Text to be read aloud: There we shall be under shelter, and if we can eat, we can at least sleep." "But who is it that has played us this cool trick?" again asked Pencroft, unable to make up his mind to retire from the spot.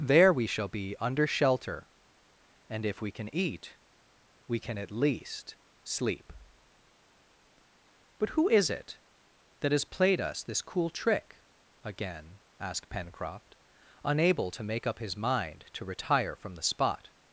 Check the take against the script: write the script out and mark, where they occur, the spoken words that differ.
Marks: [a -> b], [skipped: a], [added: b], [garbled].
There we shall be under shelter, and if we can eat, we can at least sleep." "But who is it that has played us this cool trick?" again asked Pencroft, unable to make up his mind to retire from the spot.